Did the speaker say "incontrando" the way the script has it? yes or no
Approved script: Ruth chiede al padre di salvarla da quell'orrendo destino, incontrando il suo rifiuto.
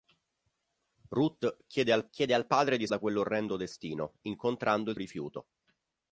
yes